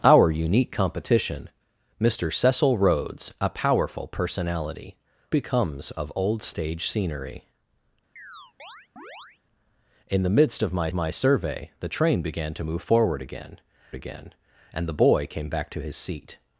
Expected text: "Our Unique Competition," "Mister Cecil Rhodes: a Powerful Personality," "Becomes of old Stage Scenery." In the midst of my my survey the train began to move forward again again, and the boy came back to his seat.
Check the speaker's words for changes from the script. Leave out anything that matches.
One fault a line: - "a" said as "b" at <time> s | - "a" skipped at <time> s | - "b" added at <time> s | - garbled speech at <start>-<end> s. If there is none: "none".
none